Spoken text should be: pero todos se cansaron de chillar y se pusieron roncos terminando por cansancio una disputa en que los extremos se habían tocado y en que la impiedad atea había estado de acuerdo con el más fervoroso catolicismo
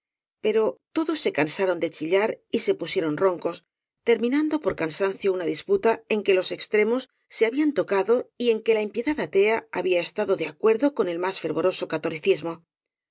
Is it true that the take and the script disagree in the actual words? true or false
false